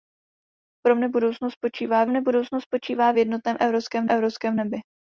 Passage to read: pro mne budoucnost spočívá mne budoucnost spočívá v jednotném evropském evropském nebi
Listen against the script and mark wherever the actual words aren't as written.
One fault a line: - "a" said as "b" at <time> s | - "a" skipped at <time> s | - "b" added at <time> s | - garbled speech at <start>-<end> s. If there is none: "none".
none